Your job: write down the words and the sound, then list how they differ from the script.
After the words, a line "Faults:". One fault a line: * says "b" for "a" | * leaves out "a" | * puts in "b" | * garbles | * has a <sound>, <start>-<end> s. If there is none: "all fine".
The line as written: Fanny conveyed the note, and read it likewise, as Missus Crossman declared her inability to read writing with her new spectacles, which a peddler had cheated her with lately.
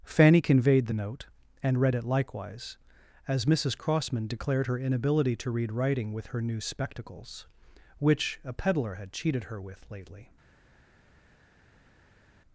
Fanny conveyed the note, and read it likewise, as Missus Crossman declared her inability to read writing with her new spectacles, which a peddler had cheated her with lately.
Faults:
all fine